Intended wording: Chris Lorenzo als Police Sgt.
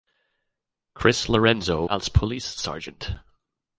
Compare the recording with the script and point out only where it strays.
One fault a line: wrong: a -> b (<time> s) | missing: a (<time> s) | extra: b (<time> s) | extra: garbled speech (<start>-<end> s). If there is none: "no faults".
no faults